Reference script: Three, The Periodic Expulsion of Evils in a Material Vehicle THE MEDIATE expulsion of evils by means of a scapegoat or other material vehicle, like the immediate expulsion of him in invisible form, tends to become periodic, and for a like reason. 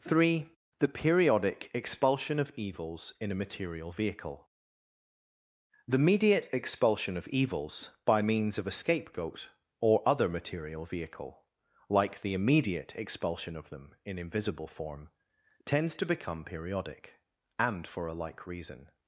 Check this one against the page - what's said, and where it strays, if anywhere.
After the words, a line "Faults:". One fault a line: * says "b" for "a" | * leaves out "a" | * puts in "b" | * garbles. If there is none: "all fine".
Three, The Periodic Expulsion of Evils in a Material Vehicle THE MEDIATE expulsion of evils by means of a scapegoat or other material vehicle, like the immediate expulsion of them in invisible form, tends to become periodic, and for a like reason.
Faults:
* says "them" for "him"